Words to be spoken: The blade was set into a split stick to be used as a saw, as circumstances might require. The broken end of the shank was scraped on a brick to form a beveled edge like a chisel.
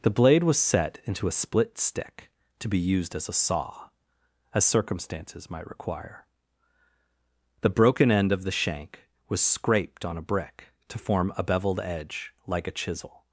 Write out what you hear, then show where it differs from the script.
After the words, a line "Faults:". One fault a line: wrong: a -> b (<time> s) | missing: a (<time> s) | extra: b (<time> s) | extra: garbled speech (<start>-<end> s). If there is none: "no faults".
The blade was set into a split stick to be used as a saw, as circumstances might require. The broken end of the shank was scraped on a brick to form a beveled edge like a chisel.
Faults:
no faults